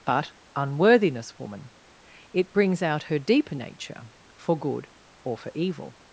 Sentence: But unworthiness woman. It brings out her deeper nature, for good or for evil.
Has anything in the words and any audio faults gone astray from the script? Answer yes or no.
no